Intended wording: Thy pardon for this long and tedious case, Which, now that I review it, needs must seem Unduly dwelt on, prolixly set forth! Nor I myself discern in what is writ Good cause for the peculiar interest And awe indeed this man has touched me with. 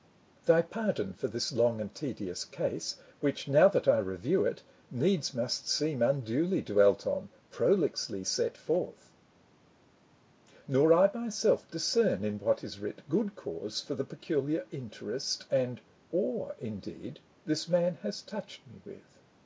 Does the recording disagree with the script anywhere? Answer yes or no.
no